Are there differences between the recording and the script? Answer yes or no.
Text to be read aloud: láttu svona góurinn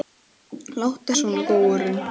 no